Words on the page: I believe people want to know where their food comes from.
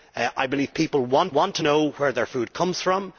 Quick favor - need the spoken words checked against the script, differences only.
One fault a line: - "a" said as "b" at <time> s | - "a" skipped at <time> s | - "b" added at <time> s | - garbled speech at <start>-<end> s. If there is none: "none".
- "want" added at 1.3 s